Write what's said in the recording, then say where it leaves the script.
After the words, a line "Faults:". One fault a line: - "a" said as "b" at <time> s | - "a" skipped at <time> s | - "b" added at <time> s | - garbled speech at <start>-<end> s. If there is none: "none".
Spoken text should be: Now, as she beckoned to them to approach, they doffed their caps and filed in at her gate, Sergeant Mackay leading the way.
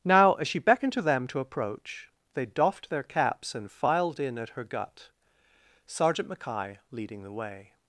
Now, as she beckoned to them to approach, they doffed their caps and filed in at her gut, Sergeant Mackay leading the way.
Faults:
- "gate" said as "gut" at 4.6 s